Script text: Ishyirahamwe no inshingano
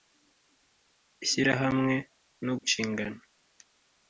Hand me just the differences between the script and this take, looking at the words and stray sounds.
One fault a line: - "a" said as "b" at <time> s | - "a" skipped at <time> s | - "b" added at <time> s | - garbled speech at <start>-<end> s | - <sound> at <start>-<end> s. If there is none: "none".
none